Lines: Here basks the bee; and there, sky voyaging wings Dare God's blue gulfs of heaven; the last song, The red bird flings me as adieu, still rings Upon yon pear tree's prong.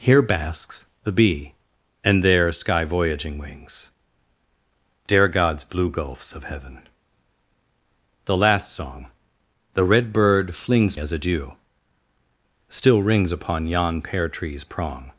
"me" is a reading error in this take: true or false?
true